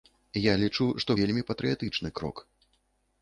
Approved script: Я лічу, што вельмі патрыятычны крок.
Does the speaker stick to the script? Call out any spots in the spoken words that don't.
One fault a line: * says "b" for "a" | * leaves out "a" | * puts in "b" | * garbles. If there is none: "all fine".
all fine